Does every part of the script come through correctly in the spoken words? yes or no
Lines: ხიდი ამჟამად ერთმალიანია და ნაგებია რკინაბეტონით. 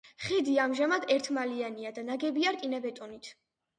yes